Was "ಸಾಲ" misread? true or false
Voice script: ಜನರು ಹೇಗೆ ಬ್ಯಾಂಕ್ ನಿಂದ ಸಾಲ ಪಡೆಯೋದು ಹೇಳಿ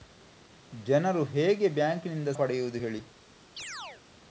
true